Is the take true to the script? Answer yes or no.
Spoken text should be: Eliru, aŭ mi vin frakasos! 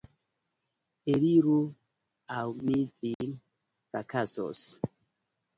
yes